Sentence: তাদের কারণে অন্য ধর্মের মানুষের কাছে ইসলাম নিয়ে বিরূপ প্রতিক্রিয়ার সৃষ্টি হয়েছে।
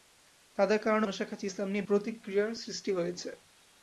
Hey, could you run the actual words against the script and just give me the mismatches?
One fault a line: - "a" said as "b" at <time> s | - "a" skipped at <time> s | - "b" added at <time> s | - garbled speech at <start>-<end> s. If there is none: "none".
- "অন্য ধর্মের" skipped at 1.1 s
- "বিরূপ" skipped at 1.9 s